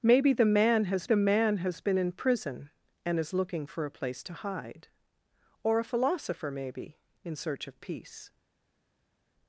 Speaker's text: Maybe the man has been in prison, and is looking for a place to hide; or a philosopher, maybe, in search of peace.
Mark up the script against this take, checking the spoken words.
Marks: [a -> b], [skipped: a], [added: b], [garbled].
Maybe the man has [added: the man has] been in prison, and is looking for a place to hide; or a philosopher, maybe, in search of peace.